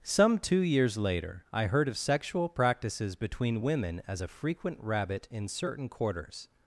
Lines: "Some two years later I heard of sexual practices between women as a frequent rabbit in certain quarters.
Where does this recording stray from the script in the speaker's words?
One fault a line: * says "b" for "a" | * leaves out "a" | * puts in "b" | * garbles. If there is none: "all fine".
all fine